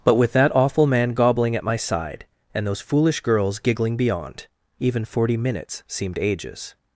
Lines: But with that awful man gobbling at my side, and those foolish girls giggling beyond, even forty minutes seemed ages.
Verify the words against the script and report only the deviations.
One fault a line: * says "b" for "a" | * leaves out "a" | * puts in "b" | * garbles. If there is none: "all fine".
all fine